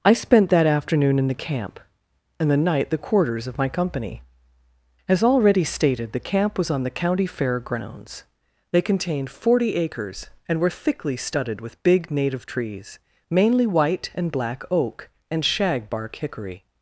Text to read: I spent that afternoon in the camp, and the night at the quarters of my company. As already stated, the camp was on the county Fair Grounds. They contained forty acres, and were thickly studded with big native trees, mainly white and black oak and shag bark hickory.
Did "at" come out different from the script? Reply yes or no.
yes